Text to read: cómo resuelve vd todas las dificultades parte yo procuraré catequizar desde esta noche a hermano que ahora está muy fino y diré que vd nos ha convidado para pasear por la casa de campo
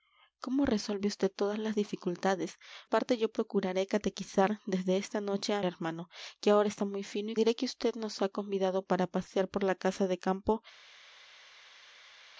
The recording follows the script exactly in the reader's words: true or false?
true